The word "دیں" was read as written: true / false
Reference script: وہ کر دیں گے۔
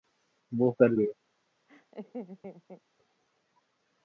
false